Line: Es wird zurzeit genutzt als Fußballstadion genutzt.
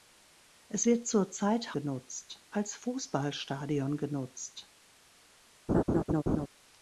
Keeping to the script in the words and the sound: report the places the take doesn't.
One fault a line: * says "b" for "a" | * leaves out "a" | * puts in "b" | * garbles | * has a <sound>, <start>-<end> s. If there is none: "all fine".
* has a laugh, 5.7-6.5 s